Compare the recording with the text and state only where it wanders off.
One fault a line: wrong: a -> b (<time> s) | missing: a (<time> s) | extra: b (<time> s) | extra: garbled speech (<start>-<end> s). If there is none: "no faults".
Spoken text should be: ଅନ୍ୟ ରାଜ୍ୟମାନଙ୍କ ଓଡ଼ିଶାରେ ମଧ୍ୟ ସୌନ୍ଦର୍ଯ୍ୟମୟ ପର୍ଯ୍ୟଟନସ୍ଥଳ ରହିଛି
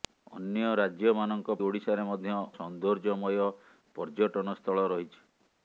no faults